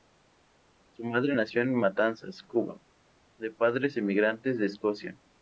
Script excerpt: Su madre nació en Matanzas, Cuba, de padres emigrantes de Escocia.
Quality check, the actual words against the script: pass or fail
pass